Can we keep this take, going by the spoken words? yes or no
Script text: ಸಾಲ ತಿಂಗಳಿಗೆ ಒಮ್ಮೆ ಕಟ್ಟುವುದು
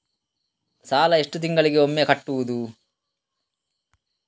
no